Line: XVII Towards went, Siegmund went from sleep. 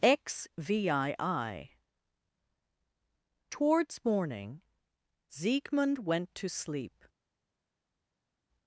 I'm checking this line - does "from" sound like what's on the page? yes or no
no